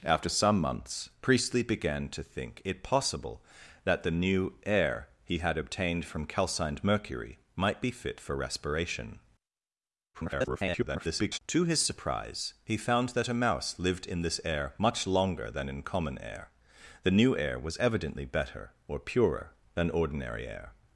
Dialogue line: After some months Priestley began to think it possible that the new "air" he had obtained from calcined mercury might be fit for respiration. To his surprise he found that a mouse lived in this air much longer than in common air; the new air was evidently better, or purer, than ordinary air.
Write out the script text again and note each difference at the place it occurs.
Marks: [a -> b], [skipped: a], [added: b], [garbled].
After some months Priestley began to think it possible that the new "air" he had obtained from calcined mercury might be fit for respiration. [garbled] To his surprise he found that a mouse lived in this air much longer than in common air; the new air was evidently better, or purer, than ordinary air.